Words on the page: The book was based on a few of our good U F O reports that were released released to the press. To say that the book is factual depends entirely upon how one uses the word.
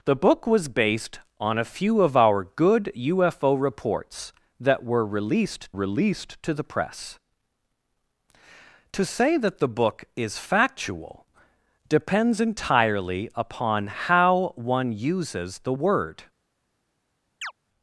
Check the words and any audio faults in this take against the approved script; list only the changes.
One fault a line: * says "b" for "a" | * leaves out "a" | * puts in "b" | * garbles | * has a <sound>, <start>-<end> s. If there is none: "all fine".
* has a chirp, 17.4-17.5 s